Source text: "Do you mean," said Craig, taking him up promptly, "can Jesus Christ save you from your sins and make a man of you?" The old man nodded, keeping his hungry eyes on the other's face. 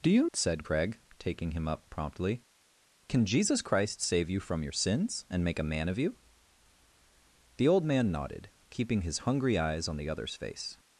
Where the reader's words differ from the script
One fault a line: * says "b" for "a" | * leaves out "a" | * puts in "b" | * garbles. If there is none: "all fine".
* leaves out "mean"